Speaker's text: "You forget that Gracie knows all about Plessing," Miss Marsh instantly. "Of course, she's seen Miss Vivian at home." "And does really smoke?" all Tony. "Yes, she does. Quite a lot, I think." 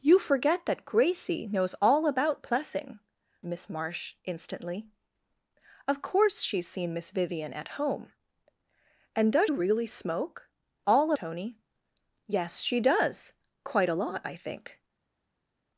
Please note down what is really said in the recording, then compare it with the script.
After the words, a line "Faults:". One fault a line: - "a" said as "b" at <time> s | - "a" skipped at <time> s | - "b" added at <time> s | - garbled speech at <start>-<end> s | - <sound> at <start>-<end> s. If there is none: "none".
"You forget that Gracie knows all about Plessing," Miss Marsh instantly. "Of course, she's seen Miss Vivian at home." "And does really smoke?" all Tony. "Yes, she does. Quite a lot, I think."
Faults:
none